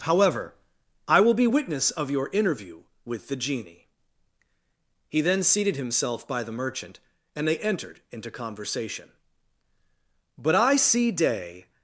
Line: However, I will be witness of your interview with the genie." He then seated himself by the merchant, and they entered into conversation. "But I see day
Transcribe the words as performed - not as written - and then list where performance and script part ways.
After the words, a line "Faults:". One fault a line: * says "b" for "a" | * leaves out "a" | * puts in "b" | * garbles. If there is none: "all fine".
However, I will be witness of your interview with the genie." He then seated himself by the merchant, and they entered into conversation. "But I see day
Faults:
all fine